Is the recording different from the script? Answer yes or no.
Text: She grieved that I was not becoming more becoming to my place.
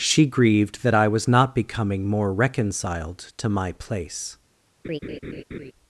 yes